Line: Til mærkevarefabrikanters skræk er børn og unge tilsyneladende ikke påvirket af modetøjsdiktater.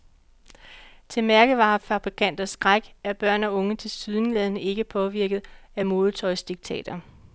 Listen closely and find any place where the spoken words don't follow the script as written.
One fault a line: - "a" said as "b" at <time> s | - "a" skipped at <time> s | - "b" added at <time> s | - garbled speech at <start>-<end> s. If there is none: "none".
none